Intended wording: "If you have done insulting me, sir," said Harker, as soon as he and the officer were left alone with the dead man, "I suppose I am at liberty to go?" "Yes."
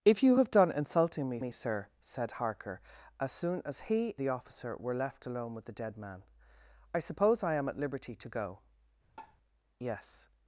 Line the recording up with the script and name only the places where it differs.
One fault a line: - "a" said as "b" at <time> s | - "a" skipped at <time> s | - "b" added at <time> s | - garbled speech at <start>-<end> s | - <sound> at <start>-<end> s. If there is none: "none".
- "me" added at 1.4 s
- "and" skipped at 4.1 s
- tap at 9.2-9.4 s